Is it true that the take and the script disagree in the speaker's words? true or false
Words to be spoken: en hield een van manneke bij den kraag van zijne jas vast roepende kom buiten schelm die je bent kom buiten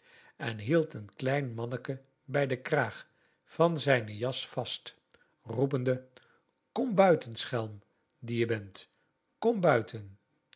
true